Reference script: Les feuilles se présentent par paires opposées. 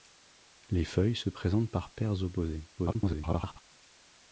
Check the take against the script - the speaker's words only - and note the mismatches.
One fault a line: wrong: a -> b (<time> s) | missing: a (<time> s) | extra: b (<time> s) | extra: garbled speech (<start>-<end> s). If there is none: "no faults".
extra: garbled speech (2.8-3.6 s)